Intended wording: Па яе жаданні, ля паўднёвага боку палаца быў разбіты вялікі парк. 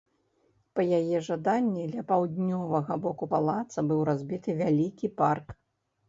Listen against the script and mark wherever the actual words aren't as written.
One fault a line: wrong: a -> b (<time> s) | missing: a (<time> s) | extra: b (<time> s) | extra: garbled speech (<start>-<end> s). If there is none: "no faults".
no faults